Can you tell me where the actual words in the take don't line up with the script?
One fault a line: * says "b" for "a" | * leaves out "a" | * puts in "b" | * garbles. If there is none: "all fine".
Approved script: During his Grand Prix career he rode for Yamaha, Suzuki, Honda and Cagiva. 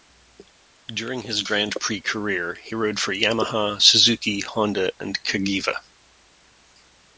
all fine